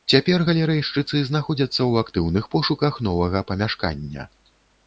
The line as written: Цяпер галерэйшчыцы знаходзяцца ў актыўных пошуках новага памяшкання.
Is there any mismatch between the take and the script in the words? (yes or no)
no